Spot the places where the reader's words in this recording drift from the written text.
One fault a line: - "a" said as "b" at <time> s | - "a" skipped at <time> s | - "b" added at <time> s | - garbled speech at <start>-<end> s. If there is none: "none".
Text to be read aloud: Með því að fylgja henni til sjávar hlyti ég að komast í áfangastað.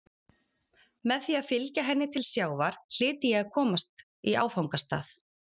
none